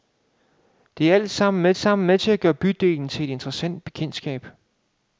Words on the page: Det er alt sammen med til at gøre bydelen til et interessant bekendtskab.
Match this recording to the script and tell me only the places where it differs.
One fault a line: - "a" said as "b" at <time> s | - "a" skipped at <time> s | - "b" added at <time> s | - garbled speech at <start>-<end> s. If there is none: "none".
- "sammen med" added at 1.8 s